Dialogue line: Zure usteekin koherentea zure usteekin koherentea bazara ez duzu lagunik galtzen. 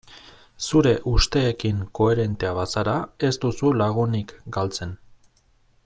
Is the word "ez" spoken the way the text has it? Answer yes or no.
yes